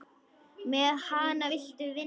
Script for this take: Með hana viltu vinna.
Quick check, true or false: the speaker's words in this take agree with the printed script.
true